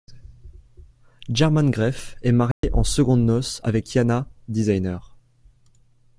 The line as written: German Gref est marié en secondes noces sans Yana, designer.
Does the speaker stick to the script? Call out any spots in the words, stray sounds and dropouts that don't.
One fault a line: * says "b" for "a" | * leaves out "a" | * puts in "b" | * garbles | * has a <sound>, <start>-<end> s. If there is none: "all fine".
* has a dropout, 2.5-2.6 s
* says "avec" for "sans"